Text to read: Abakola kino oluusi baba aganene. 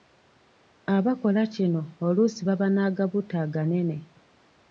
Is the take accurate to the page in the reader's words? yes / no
no